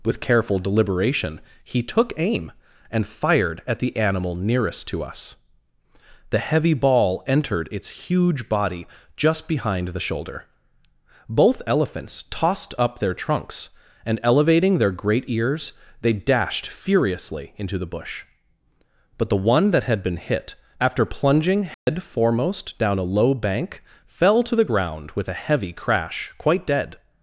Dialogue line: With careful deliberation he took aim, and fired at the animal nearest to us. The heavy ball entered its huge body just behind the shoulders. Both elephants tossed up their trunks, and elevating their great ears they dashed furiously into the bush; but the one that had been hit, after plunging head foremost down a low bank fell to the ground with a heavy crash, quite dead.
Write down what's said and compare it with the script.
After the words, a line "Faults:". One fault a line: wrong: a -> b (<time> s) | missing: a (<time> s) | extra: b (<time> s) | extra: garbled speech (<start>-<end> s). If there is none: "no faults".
With careful deliberation he took aim, and fired at the animal nearest to us. The heavy ball entered its huge body just behind the shoulder. Both elephants tossed up their trunks, and elevating their great ears they dashed furiously into the bush; but the one that had been hit, after plunging head foremost down a low bank fell to the ground with a heavy crash, quite dead.
Faults:
wrong: shoulders -> shoulder (10.0 s)